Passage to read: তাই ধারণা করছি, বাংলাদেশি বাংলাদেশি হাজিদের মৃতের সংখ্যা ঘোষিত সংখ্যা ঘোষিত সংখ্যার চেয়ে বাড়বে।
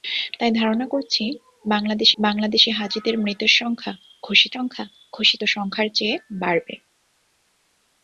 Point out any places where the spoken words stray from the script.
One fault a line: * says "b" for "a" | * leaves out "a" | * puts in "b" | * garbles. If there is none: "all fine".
all fine